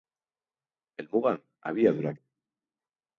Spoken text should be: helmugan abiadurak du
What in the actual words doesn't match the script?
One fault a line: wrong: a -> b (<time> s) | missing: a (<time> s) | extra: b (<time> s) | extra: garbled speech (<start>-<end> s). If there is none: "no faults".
no faults